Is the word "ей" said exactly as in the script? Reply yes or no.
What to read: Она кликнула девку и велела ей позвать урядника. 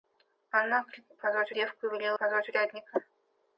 no